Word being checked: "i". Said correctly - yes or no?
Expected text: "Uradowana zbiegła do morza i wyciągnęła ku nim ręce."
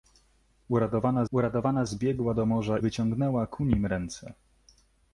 no